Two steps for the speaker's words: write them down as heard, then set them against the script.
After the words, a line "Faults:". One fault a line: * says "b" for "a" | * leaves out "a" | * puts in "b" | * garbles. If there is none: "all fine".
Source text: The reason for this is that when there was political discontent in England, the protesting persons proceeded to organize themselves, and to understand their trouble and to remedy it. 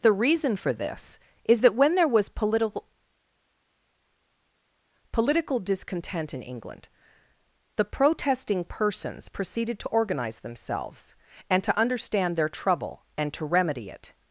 The reason for this is that when there was political political discontent in England, the protesting persons proceeded to organize themselves, and to understand their trouble and to remedy it.
Faults:
* puts in "political"